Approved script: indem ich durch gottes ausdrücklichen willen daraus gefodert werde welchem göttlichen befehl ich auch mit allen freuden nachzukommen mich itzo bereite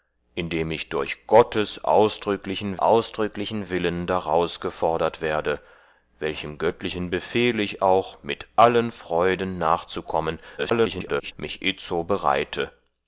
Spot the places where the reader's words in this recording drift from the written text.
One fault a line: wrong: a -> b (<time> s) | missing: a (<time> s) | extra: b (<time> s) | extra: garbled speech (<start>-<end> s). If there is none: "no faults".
extra: ausdrücklichen (2.8 s)
extra: garbled speech (10.6-11.3 s)